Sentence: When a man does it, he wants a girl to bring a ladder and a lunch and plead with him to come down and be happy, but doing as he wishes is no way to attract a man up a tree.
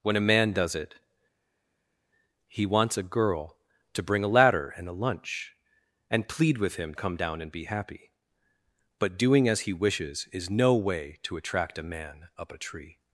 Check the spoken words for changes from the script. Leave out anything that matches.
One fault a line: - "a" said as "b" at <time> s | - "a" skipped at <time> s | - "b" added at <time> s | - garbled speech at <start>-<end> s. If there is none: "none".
- "to" skipped at 6.9 s